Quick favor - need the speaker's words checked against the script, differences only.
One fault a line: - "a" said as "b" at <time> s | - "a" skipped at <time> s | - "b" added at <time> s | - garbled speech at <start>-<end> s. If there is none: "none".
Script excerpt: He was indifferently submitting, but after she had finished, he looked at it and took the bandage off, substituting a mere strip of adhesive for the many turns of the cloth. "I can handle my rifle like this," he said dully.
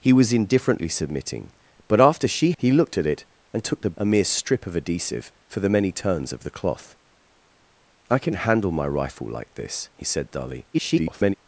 - "had finished" skipped at 2.5 s
- "bandage off substituting" skipped at 4.0 s
- garbled speech at 10.7-11.3 s